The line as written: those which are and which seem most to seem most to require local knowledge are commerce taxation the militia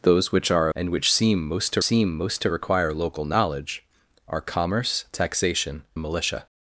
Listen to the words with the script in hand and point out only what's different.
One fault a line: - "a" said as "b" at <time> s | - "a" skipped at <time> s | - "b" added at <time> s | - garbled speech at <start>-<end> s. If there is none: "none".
none